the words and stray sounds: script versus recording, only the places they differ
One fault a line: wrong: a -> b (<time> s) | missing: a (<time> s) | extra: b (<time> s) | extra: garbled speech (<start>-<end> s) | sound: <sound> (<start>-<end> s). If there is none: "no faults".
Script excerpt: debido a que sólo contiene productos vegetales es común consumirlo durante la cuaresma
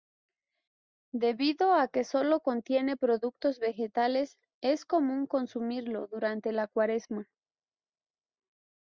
no faults